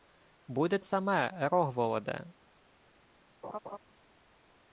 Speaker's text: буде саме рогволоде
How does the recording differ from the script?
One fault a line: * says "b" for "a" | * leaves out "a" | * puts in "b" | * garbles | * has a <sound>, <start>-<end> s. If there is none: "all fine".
* has a laugh, 3.4-3.8 s